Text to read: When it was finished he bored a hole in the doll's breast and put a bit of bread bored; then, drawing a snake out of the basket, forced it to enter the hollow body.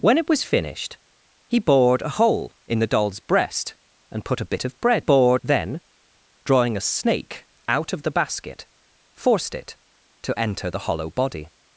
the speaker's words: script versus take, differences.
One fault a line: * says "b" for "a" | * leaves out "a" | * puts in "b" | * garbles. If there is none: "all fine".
all fine